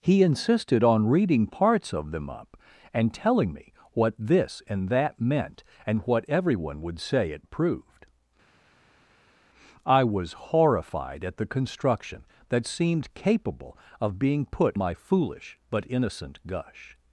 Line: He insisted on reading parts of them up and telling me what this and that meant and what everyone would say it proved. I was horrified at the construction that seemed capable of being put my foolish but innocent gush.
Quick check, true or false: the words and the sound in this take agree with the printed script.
true